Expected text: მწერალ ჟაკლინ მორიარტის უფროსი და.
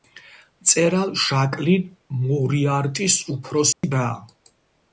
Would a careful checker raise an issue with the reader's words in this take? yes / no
no